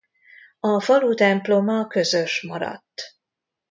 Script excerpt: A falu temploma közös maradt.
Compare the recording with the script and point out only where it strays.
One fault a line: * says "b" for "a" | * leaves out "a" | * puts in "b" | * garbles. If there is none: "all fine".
all fine